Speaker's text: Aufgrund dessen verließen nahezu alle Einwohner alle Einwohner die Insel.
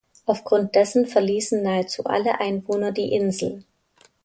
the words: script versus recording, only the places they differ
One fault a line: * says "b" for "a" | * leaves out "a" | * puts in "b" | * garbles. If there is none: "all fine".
* leaves out "alle Einwohner"